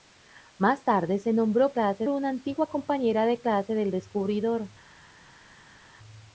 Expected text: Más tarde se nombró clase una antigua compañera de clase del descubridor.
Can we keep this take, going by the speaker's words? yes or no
yes